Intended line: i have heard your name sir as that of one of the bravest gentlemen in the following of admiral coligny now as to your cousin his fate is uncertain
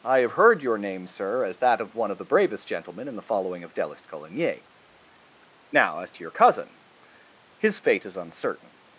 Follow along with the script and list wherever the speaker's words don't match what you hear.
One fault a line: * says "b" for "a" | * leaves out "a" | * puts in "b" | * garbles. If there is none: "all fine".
* says "delist" for "admiral"